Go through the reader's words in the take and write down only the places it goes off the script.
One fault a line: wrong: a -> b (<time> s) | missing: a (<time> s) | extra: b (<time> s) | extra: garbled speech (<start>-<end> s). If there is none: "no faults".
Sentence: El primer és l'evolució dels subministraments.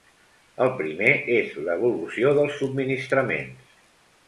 no faults